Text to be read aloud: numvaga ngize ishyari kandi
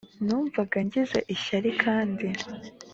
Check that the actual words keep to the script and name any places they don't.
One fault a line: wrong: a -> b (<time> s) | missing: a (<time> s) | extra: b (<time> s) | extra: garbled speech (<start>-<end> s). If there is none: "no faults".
no faults